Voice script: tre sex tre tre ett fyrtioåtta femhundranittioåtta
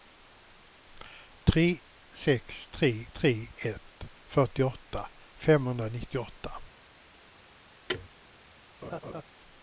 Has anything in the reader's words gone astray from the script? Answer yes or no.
no